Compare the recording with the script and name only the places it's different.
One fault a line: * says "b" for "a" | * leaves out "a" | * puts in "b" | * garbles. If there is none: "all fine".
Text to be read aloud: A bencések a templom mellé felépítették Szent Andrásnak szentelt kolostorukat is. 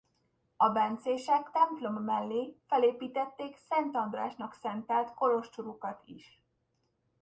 * leaves out "a"